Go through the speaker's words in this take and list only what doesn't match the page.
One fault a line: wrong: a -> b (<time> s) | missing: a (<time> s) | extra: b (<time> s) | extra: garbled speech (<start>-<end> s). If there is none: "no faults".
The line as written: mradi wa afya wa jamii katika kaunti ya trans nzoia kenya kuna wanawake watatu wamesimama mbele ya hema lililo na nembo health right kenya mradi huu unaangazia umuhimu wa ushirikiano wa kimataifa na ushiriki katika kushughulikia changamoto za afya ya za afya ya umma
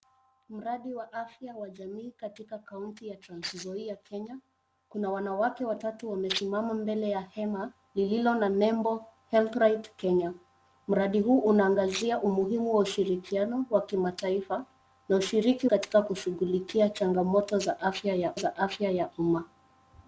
no faults